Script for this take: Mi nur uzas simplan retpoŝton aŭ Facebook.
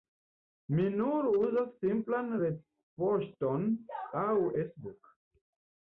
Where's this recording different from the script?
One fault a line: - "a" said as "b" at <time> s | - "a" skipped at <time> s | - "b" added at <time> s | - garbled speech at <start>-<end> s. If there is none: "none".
none